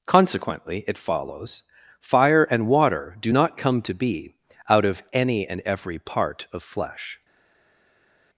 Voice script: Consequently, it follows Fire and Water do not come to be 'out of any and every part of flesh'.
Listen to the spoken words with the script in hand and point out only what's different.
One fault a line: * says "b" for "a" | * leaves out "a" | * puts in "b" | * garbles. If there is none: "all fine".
all fine